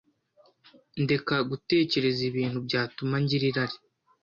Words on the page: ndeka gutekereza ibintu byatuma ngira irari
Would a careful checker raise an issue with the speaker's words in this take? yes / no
no